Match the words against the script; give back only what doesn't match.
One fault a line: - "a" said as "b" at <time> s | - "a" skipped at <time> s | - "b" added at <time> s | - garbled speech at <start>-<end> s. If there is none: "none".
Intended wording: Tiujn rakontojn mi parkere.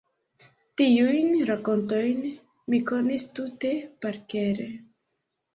- "konis tute" added at 2.9 s